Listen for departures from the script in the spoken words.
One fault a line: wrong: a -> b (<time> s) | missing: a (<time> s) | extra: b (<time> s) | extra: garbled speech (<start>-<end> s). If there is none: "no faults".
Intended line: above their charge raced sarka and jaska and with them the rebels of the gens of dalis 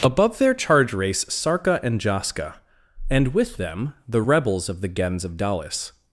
wrong: raced -> race (0.9 s)